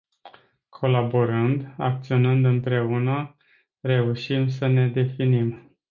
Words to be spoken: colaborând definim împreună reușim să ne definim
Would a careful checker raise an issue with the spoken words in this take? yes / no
yes